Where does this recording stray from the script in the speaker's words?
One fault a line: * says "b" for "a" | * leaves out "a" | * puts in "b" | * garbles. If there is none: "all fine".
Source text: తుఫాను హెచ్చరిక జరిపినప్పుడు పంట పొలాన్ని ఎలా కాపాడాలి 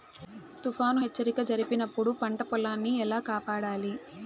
all fine